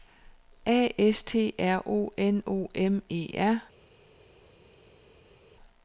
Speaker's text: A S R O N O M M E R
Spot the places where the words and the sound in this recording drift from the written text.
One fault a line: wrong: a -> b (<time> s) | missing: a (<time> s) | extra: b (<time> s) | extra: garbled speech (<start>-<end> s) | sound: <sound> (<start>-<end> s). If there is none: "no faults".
extra: T (1.2 s)
missing: M (3.0 s)